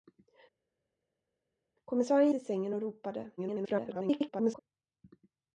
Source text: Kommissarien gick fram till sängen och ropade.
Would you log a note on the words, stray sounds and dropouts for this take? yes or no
yes